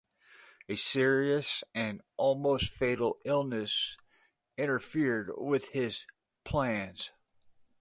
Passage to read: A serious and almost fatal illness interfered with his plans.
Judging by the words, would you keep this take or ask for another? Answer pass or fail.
pass